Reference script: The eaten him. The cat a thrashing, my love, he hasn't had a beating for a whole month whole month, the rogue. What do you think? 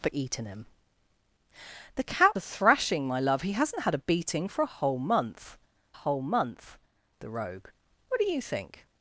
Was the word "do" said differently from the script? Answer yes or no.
no